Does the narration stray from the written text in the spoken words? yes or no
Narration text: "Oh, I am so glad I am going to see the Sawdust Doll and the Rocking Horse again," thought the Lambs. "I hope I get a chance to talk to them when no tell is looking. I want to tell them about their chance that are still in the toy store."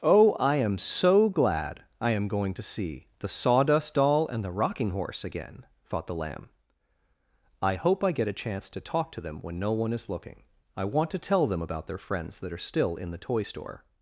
yes